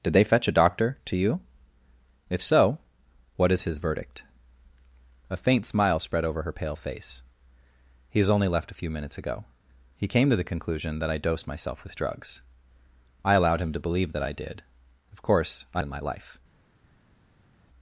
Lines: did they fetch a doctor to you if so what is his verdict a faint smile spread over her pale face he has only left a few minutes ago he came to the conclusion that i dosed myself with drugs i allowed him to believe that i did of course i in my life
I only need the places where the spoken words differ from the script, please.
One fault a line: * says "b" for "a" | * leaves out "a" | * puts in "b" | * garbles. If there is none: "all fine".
all fine